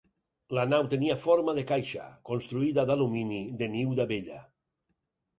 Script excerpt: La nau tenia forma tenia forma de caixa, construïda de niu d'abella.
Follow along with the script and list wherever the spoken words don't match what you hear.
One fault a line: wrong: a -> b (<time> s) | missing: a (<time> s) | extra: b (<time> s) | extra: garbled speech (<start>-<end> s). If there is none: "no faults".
missing: tenia forma (1.5 s)
extra: d'alumini (2.9 s)